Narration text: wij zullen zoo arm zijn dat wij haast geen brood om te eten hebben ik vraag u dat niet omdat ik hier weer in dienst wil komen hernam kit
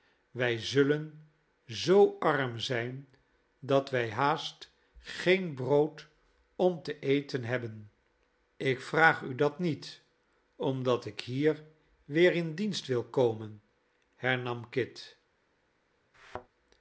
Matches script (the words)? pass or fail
pass